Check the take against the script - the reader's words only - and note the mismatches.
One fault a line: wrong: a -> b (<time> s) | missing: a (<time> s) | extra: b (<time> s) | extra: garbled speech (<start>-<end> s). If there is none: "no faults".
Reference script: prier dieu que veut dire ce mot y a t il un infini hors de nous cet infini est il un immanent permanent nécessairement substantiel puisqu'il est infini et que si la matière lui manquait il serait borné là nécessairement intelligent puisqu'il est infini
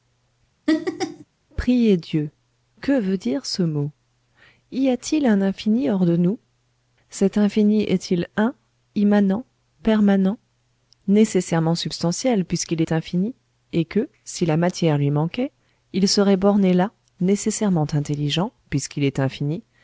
no faults